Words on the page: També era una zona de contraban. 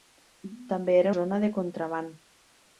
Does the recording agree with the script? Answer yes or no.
no